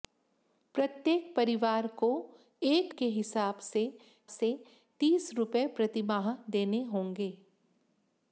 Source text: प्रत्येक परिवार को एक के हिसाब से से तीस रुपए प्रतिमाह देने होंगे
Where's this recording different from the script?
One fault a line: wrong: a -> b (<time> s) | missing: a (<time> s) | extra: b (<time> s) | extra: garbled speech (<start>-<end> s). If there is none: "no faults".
no faults